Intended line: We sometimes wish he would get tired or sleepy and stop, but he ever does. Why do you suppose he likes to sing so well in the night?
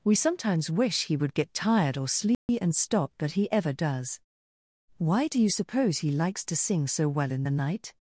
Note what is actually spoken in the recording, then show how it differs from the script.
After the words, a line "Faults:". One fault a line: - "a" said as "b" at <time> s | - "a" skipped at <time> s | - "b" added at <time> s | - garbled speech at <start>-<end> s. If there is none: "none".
We sometimes wish he would get tired or sleepy and stop, but he ever does. Why do you suppose he likes to sing so well in the night?
Faults:
none